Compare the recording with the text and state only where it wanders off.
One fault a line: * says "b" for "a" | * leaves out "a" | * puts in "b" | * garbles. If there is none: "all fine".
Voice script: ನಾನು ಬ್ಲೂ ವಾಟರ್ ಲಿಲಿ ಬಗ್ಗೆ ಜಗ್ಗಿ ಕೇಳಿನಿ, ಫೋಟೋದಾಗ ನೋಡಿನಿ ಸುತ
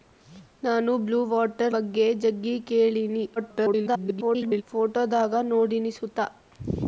* leaves out "ಲಿಲಿ"
* garbles